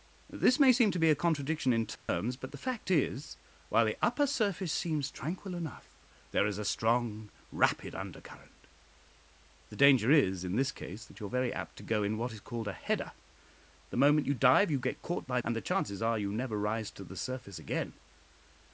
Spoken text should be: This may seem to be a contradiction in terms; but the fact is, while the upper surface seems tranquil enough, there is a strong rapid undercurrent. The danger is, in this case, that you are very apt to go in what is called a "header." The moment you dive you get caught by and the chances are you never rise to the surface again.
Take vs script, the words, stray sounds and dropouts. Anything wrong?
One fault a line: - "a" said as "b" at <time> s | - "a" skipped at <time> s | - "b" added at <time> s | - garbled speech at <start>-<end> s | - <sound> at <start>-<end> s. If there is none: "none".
- dropout at 2.0-2.1 s